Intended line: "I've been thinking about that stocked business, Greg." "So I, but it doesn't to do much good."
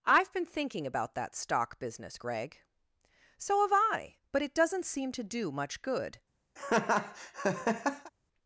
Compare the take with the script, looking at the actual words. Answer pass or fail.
fail